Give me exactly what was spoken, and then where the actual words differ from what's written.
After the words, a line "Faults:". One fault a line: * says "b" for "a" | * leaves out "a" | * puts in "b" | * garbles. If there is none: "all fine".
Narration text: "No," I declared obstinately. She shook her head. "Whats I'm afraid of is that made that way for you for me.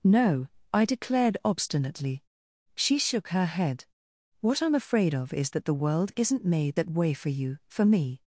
"No," I declared obstinately. She shook her head. "What I'm afraid of is that the world isn't made that way for you for me.
Faults:
* says "What" for "Whats"
* puts in "the world isn't"